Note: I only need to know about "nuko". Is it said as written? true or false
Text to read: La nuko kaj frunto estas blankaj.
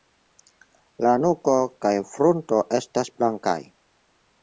true